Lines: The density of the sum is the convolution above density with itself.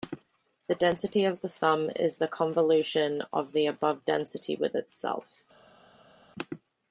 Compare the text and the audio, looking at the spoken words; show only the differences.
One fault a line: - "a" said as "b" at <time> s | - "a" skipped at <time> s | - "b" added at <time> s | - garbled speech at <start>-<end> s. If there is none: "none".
- "of the" added at 3.3 s